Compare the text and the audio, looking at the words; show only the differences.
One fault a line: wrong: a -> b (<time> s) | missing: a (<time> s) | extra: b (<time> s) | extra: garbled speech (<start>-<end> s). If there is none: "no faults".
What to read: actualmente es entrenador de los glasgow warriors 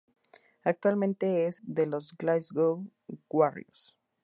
missing: entrenador (1.6 s)